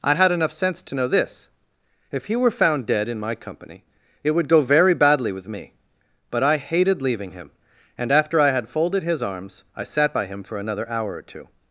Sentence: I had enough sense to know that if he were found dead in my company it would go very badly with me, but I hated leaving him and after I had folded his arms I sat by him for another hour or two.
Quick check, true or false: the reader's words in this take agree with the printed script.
false